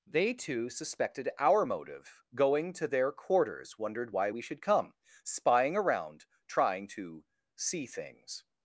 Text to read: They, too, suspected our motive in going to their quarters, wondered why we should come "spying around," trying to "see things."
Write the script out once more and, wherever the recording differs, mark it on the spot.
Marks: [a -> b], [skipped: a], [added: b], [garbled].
They, too, suspected our motive [skipped: in] going to their quarters, wondered why we should come "spying around," trying to "see things."